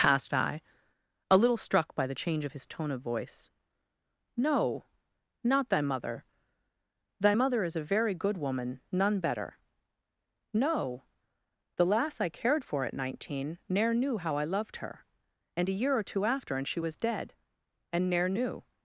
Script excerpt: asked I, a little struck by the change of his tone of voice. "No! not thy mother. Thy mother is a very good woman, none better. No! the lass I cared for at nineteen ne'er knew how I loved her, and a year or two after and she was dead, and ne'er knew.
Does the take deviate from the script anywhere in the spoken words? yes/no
no